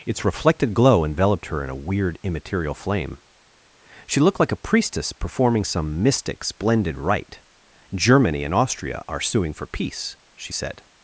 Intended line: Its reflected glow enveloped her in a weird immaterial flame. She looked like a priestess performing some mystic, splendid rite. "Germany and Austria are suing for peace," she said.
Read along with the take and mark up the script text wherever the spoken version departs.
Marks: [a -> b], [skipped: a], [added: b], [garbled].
Its reflected glow enveloped her in a weird immaterial flame. She looked like a priestess performing some mystic, splendid rite. "Germany and Austria are suing for peace," she said.